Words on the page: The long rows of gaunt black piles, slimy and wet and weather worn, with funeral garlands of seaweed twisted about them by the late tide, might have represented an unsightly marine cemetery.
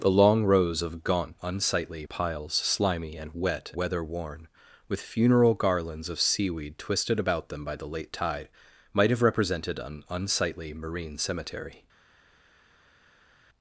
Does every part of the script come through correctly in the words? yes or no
no